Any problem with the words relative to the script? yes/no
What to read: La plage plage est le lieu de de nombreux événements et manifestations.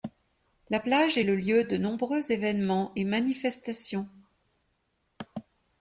yes